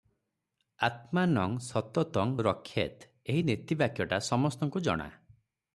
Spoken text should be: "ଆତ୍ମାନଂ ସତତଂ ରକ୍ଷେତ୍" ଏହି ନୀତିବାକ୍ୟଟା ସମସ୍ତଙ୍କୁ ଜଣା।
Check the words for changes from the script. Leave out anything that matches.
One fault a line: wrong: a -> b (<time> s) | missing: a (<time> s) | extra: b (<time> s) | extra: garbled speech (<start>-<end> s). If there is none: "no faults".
no faults